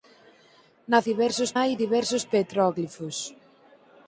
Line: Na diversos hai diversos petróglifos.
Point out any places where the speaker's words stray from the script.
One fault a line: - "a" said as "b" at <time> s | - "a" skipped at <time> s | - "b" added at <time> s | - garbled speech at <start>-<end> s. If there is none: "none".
none